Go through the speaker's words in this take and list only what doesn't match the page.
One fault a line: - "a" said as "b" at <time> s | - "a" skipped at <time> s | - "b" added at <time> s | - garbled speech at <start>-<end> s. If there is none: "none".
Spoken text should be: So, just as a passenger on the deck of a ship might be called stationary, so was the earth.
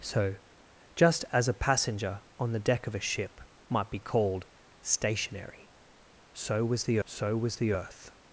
- "so was the" added at 7.0 s